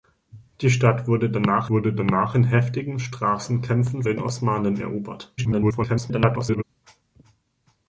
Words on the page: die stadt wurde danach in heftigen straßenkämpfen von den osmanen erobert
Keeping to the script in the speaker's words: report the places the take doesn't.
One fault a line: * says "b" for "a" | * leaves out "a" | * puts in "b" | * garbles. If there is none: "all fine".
* puts in "wurde danach"
* leaves out "von"
* garbles